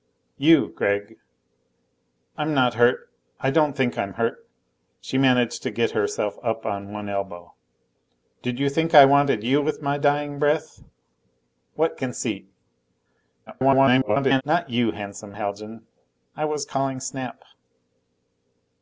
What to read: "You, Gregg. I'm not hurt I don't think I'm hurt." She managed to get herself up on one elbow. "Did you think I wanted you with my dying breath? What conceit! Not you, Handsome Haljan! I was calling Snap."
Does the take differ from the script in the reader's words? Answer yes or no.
yes